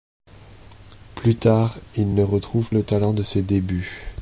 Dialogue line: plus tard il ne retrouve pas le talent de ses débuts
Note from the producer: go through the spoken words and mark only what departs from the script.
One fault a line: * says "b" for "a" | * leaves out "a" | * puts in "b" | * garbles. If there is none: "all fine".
* leaves out "pas"